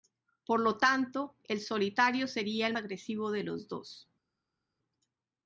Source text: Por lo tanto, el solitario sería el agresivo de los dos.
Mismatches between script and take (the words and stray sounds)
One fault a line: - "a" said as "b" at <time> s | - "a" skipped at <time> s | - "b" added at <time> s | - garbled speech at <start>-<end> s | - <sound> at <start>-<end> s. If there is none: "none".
none